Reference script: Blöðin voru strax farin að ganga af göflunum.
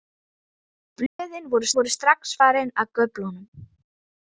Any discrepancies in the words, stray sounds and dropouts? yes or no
yes